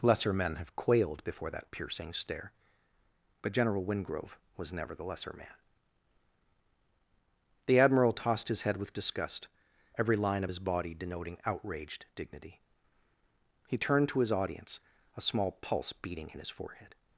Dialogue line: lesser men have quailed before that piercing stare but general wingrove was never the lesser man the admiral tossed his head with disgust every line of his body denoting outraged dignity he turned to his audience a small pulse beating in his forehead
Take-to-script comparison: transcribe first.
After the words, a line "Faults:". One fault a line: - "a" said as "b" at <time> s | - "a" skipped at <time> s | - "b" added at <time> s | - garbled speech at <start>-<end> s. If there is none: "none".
lesser men have quailed before that piercing stare but general wingrove was never the lesser man the admiral tossed his head with disgust every line of his body denoting outraged dignity he turned to his audience a small pulse beating in his forehead
Faults:
none